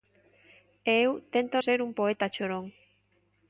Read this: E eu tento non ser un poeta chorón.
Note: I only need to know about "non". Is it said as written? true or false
false